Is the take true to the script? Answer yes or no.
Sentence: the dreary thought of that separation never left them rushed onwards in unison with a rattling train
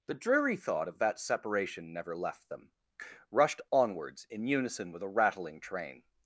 yes